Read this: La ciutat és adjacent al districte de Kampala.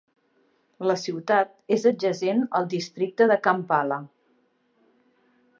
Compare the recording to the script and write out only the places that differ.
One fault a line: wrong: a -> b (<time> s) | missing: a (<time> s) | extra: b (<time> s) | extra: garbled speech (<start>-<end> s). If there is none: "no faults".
no faults